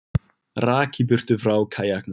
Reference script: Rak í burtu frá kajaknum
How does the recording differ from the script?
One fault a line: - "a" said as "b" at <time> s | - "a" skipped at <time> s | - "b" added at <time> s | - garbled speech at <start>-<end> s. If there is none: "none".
none